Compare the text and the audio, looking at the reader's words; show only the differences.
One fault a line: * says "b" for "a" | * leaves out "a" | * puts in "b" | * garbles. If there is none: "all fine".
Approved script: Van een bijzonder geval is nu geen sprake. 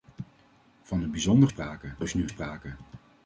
* says "sprake" for "geval"
* leaves out "geen"